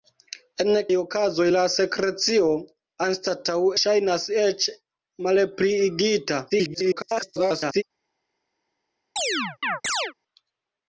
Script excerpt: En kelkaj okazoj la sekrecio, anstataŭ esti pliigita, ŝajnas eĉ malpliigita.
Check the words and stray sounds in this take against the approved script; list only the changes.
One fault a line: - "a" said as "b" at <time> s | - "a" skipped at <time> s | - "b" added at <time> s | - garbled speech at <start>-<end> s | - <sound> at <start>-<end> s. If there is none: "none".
- "kelkaj" skipped at 0.7 s
- "esti pliigita" skipped at 3.6 s
- garbled speech at 6.5-7.8 s
- chirp at 9.2-10.1 s